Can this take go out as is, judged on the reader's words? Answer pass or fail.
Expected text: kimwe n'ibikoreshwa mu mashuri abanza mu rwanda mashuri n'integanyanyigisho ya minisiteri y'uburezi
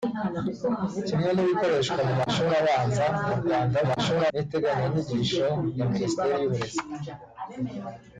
pass